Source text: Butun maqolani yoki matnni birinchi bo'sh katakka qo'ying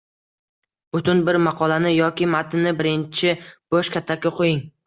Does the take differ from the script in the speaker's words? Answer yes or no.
yes